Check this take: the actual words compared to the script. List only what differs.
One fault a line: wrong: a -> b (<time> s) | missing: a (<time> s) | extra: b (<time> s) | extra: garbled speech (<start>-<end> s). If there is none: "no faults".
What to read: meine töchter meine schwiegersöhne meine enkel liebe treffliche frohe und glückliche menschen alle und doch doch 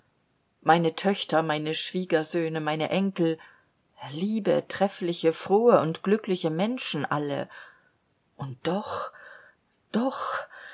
no faults